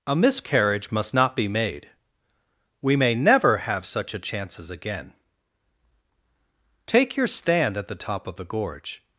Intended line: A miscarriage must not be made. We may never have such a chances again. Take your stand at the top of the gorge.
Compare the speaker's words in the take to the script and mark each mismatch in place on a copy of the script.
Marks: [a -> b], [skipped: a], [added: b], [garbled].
A miscarriage must not be made. We may never have such a chances again. Take your stand at the top of the gorge.